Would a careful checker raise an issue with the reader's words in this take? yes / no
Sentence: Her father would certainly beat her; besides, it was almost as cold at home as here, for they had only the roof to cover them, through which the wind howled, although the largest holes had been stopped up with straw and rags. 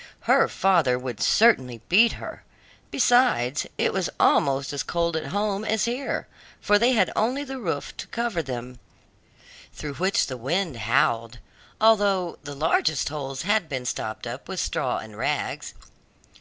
no